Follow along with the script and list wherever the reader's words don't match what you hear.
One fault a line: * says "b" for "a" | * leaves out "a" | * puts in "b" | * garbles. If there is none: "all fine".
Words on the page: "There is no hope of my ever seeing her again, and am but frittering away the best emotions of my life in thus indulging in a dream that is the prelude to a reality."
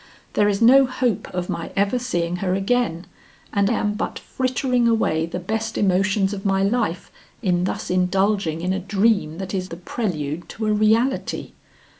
all fine